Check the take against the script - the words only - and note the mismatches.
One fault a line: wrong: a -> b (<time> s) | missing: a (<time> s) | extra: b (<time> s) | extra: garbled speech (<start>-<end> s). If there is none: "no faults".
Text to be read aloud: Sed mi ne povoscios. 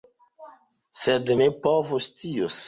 missing: mi (1.3 s)